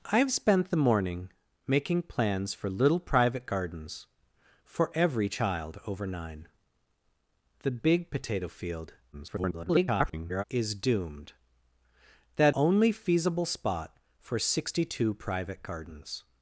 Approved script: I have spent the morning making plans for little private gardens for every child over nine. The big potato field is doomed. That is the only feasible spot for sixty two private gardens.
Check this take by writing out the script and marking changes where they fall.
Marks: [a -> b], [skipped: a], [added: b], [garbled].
I have spent the morning making plans for little private gardens for every child over nine. The big potato field [garbled] is doomed. That [skipped: is the] only feasible spot for sixty two private gardens.